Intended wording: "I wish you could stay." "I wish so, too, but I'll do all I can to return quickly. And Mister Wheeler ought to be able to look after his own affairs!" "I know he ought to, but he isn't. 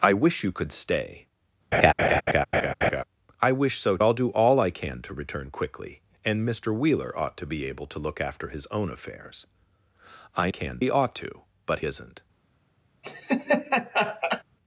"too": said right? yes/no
no